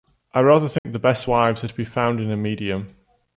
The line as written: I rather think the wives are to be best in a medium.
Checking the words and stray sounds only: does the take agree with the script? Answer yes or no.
no